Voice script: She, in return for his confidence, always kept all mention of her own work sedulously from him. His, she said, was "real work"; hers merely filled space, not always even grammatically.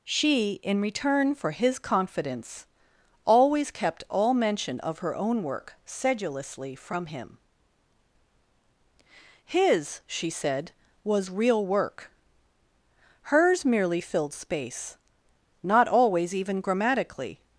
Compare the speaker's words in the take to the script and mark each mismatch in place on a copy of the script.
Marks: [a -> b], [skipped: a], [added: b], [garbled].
She, in return for his confidence, always kept all mention of her own work sedulously from him. His, she said, was "real work"; hers merely filled space, not always even grammatically.